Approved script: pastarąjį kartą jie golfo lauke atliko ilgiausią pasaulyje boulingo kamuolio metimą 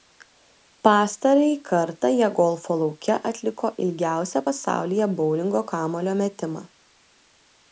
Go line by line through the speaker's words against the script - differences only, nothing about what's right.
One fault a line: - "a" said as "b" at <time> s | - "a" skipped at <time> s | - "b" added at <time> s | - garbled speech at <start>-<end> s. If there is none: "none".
none